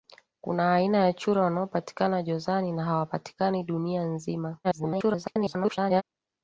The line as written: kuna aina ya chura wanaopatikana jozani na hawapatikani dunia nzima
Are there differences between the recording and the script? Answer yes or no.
yes